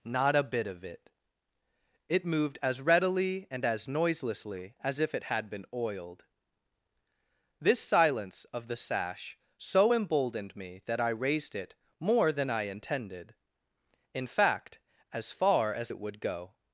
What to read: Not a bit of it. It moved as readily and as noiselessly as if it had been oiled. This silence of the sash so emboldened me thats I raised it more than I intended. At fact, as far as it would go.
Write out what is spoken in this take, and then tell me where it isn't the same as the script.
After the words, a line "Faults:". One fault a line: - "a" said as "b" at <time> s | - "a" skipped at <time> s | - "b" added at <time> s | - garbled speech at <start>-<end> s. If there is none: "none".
Not a bit of it. It moved as readily and as noiselessly as if it had been oiled. This silence of the sash so emboldened me that I raised it more than I intended. In fact, as far as it would go.
Faults:
- "thats" said as "that" at 10.9 s
- "At" said as "In" at 14.1 s